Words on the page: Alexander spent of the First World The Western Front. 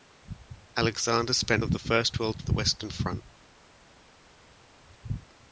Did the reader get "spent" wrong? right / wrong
right